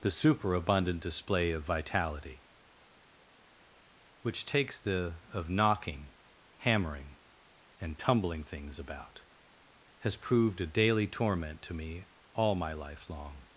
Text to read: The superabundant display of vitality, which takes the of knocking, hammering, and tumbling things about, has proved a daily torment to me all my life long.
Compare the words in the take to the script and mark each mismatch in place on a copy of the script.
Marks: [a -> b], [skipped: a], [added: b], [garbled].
The superabundant display of vitality, which takes the of knocking, hammering, and tumbling things about, has proved a daily torment to me all my life long.